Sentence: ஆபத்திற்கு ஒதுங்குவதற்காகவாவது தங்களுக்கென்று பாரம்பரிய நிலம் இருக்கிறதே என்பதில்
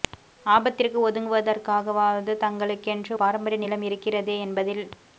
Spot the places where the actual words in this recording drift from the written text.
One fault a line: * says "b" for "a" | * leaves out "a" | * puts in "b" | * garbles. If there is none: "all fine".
all fine